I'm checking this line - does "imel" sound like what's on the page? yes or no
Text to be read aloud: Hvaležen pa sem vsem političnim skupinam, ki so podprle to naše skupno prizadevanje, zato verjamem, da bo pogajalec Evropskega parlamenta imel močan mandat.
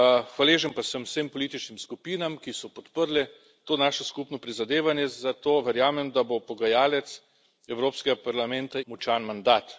no